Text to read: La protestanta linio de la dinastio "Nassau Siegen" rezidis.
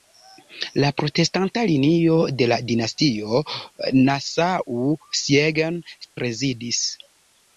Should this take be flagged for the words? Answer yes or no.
no